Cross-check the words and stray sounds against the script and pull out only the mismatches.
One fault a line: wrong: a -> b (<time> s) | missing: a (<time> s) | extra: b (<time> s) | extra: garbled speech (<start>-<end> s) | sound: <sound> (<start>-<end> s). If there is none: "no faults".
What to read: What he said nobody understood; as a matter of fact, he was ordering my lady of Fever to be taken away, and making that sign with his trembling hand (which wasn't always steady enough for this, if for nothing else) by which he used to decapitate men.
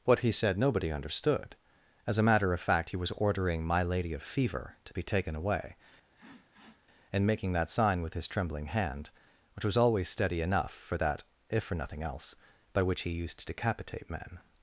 sound: sniff (6.1-6.9 s)
wrong: wasn't -> was (9.6 s)
wrong: this -> that (11.0 s)